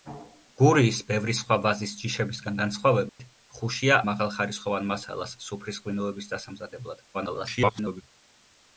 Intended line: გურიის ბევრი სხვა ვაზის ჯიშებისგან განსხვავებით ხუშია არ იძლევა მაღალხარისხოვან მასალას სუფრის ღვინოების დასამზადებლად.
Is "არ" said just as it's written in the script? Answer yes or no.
no